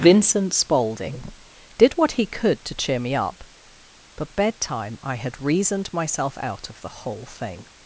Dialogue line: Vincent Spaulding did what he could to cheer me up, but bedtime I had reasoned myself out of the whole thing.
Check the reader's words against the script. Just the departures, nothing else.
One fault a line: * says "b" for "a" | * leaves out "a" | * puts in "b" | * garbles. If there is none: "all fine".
all fine